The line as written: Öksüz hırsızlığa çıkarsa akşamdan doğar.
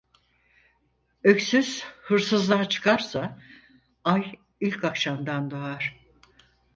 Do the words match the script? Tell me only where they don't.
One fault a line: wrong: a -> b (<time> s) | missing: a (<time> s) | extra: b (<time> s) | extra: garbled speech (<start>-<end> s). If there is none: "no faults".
extra: ay ilk (4.0 s)